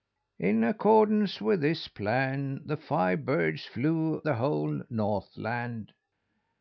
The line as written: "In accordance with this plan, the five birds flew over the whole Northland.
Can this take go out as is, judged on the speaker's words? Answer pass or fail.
fail